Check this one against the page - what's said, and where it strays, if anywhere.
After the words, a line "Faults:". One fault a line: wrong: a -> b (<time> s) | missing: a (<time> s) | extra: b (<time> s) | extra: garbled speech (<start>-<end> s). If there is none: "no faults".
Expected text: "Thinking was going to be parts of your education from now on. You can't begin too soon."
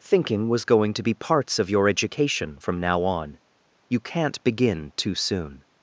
"Thinking was going to be parts of your education from now on. You can't begin too soon."
Faults:
no faults